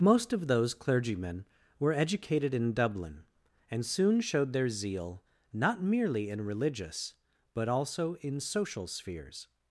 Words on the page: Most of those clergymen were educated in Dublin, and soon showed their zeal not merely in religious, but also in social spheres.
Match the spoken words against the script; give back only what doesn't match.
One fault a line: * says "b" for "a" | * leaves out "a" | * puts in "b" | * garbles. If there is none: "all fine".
all fine